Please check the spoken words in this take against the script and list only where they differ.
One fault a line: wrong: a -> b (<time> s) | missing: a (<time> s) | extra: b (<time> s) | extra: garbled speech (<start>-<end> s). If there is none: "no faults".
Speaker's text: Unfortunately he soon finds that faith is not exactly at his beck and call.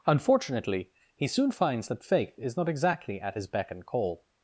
no faults